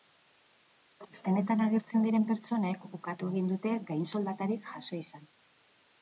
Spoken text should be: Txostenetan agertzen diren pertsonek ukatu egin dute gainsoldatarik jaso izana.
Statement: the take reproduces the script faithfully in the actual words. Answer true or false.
true